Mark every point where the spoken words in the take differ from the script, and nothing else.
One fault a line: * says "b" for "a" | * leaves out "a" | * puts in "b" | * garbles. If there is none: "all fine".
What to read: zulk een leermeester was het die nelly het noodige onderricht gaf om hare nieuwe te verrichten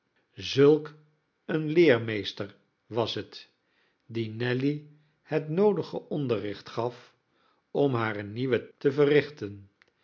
all fine